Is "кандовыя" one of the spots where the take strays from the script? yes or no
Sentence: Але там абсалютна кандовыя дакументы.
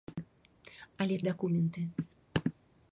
yes